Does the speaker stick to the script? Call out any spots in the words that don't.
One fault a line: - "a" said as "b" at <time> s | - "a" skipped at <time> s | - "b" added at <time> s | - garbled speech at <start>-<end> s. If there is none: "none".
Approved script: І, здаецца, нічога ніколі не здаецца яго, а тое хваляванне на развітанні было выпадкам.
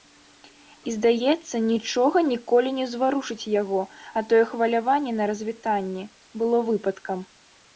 - "здаецца" said as "ўзварушыць" at 2.9 s